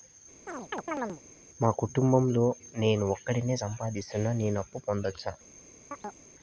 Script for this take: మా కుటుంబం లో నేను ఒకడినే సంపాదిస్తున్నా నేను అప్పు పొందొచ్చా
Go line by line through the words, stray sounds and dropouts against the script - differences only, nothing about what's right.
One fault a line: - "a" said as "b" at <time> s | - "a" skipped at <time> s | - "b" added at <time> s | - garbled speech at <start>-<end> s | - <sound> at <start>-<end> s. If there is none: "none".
- chirp at 0.5-1.2 s
- chirp at 5.9-6.3 s